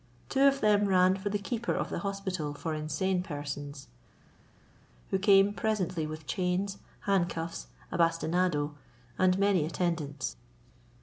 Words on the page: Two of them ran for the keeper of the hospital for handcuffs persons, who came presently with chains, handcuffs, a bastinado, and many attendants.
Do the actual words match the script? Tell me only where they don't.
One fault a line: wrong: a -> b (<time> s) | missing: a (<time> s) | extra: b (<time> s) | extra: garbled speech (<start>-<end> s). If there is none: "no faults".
wrong: handcuffs -> insane (2.7 s)